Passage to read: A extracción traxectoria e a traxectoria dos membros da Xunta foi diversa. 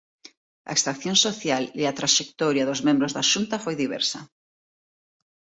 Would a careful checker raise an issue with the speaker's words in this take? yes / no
yes